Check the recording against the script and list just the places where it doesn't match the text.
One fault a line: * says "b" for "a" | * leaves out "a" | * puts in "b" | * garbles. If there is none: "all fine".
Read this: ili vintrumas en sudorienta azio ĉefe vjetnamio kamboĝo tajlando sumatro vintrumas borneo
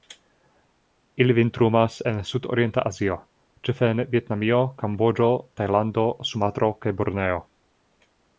* puts in "en"
* says "kaj" for "vintrumas"